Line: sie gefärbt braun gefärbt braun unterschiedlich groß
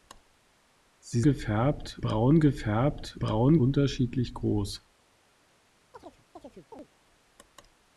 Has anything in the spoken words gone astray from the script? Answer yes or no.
no